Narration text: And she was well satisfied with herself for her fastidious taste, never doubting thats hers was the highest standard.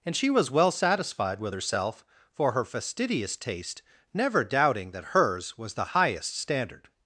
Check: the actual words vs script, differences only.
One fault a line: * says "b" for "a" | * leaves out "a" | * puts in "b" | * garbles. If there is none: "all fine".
* says "that" for "thats"